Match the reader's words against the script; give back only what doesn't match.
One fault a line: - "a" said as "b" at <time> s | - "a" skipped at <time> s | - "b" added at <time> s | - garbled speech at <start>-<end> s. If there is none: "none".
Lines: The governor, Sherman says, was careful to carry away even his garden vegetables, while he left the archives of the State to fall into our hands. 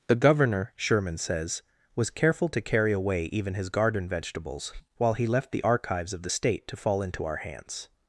none